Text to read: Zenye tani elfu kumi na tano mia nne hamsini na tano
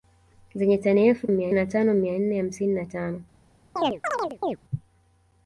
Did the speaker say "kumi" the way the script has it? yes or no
no